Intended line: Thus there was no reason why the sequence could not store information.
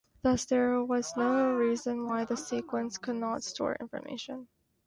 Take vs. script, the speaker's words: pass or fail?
pass